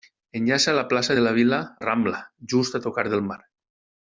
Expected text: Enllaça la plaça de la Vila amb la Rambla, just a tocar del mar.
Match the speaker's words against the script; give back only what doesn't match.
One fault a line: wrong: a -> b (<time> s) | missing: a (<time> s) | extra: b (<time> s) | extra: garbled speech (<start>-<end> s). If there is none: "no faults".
missing: amb (1.6 s)